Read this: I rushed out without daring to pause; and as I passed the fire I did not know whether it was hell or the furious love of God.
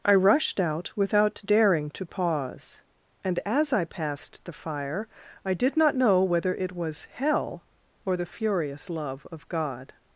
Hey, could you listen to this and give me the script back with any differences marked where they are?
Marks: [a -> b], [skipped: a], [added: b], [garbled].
I rushed out without daring to pause; and as I passed the fire I did not know whether it was hell or the furious love of God.